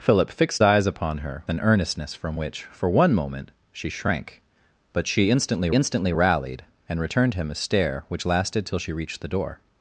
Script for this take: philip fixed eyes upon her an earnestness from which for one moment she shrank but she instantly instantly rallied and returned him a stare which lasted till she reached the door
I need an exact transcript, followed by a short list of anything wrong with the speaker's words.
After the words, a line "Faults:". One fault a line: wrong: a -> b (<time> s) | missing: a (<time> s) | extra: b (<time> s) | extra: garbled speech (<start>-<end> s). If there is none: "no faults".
philip fixed eyes upon her an earnestness from which for one moment she shrank but she instantly instantly rallied and returned him a stare which lasted till she reached the door
Faults:
no faults